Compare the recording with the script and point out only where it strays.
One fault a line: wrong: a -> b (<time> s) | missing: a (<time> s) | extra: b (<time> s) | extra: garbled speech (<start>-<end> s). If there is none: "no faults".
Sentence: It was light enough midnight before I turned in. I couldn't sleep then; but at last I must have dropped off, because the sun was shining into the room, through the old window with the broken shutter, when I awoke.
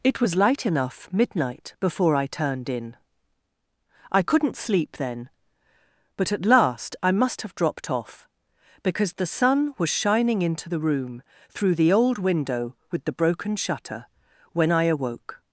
no faults